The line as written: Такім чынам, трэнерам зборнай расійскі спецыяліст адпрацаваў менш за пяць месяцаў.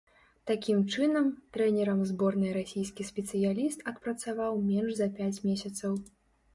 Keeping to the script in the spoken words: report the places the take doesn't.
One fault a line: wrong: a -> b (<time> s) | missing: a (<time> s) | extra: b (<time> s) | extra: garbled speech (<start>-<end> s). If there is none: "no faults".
no faults